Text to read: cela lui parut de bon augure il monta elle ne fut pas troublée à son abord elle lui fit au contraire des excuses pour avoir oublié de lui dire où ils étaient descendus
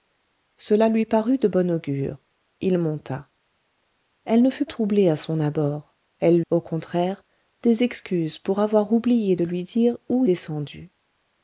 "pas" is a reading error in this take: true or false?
true